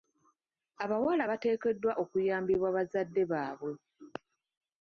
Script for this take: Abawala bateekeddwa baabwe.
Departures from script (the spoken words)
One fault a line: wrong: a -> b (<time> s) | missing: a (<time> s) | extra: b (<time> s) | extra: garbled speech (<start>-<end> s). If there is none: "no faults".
extra: okuyambibwa bazadde (2.0 s)